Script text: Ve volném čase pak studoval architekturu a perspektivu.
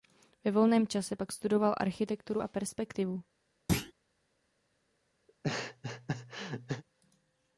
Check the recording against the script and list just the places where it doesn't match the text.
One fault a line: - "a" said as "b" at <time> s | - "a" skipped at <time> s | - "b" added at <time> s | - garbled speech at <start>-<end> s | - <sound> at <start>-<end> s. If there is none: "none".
- thud at 3.7-3.9 s
- laugh at 5.3-6.8 s